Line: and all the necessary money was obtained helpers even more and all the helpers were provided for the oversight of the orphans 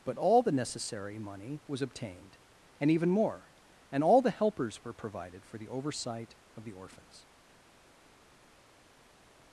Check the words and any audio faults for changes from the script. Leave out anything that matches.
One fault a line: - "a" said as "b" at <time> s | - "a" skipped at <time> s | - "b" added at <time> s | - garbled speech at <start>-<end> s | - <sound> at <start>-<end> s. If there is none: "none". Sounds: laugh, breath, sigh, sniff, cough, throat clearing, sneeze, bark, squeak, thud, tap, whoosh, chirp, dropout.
- "and" said as "but" at 0.0 s
- "helpers" said as "and" at 2.8 s